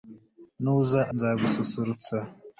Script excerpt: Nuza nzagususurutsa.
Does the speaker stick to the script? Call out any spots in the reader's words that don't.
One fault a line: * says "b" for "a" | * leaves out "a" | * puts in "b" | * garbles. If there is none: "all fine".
all fine